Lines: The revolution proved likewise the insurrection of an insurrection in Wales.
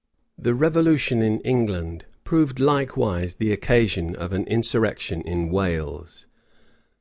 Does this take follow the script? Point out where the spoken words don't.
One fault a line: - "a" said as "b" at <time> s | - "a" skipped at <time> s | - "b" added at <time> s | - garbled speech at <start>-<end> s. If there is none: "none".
- "in England" added at 1.2 s
- "insurrection" said as "occasion" at 3.5 s